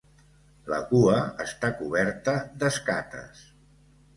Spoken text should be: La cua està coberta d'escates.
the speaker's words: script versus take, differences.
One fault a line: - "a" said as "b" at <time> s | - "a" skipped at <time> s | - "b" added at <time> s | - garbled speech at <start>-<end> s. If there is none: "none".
none